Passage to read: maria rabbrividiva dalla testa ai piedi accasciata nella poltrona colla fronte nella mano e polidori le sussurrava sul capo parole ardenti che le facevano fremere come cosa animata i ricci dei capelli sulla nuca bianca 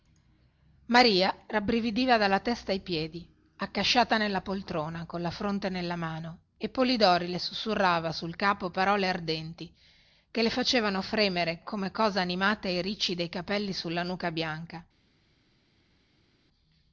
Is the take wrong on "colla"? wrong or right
right